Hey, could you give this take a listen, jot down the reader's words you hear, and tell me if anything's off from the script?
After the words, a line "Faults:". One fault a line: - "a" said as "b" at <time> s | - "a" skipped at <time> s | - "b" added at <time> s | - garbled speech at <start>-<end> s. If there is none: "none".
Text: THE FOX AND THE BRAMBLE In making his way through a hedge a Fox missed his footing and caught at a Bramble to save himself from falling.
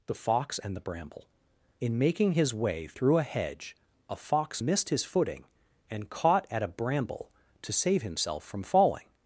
THE FOX AND THE BRAMBLE In making his way through a hedge a Fox missed his footing and caught at a Bramble to save himself from falling.
Faults:
none